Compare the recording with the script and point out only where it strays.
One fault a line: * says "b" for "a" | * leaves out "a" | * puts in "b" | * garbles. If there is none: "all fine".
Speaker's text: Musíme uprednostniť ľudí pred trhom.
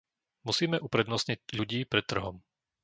all fine